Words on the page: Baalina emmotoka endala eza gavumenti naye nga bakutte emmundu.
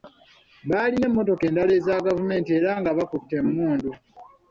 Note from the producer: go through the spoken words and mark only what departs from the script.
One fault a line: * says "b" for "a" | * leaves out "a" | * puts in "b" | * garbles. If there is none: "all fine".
* says "era" for "naye"